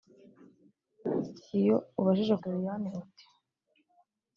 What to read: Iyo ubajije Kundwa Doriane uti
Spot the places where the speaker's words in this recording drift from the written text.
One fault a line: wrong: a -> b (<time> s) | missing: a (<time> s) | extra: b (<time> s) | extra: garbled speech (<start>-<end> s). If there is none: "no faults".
missing: Kundwa (2.3 s)